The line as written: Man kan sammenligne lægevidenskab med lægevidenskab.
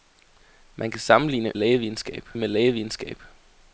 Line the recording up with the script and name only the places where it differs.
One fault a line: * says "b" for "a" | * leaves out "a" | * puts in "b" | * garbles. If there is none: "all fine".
all fine